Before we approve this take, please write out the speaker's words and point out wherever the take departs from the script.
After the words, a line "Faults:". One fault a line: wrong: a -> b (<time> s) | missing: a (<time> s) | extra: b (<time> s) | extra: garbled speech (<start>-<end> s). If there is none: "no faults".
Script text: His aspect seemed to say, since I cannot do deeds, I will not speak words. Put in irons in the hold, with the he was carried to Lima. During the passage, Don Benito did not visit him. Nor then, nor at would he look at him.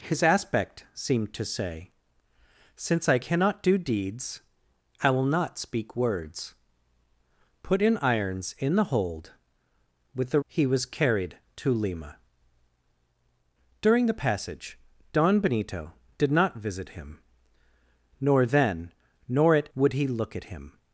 His aspect seemed to say, since I cannot do deeds, I will not speak words. Put in irons in the hold, with the he was carried to Lima. During the passage, Don Benito did not visit him. Nor then, nor at would he look at him.
Faults:
no faults